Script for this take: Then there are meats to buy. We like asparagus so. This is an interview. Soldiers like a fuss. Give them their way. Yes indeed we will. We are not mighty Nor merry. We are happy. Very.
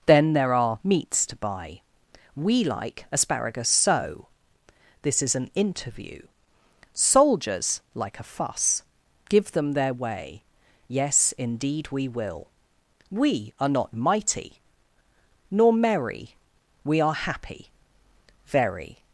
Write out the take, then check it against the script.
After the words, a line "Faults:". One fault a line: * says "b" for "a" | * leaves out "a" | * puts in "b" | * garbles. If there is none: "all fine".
Then there are meats to buy. We like asparagus so. This is an interview. Soldiers like a fuss. Give them their way. Yes indeed we will. We are not mighty Nor merry. We are happy. Very.
Faults:
all fine